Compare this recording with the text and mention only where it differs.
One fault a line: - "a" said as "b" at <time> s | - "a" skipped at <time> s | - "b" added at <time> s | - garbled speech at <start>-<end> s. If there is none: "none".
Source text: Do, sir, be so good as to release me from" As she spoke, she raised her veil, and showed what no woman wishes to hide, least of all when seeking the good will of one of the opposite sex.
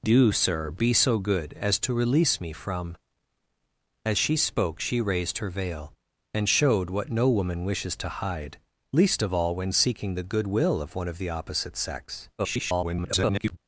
- garbled speech at 12.4-13.6 s